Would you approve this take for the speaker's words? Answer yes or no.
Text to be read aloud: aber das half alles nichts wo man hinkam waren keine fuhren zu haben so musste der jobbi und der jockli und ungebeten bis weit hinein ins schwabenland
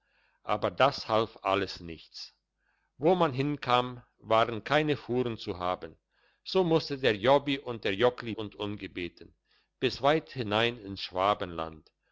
yes